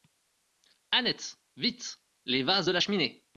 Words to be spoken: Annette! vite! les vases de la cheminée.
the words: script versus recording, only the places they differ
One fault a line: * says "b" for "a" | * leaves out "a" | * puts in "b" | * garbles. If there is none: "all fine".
all fine